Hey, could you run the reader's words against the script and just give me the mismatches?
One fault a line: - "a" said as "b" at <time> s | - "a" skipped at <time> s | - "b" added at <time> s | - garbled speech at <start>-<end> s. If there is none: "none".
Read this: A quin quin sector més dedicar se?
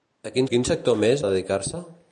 none